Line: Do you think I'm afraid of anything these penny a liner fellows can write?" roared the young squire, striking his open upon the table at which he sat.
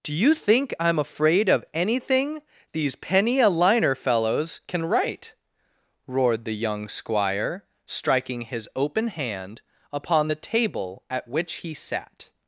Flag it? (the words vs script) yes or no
yes